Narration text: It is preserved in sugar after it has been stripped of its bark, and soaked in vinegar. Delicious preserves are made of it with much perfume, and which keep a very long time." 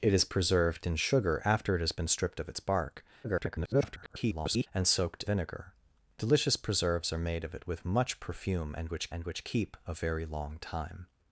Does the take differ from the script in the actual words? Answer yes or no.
yes